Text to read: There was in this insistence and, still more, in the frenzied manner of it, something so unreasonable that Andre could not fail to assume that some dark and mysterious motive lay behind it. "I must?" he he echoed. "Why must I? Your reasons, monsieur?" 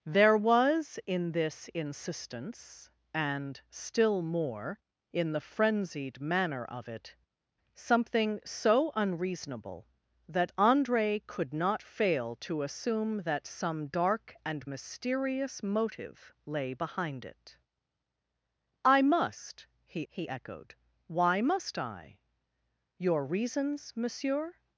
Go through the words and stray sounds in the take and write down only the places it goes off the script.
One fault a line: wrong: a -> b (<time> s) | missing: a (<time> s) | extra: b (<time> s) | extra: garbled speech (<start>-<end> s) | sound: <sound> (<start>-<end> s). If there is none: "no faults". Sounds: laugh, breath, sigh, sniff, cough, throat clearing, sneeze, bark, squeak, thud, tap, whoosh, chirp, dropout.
no faults